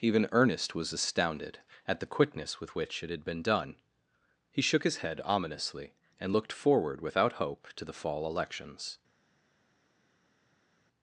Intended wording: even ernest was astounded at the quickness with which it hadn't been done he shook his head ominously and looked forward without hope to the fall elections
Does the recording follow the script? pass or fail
fail